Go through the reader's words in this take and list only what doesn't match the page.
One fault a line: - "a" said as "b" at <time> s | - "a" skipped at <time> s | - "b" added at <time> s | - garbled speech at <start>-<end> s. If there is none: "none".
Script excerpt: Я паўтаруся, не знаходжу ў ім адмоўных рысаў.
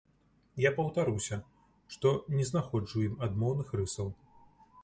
- "што" added at 1.9 s